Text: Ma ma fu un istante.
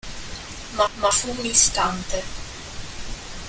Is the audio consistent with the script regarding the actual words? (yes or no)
yes